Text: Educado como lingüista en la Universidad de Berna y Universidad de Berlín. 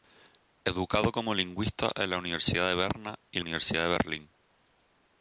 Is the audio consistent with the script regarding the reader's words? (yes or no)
yes